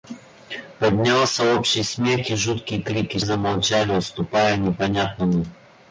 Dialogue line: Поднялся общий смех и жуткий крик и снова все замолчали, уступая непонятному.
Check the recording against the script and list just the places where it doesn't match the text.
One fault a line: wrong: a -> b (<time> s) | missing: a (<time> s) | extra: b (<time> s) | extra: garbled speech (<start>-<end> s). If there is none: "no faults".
missing: снова все (3.2 s)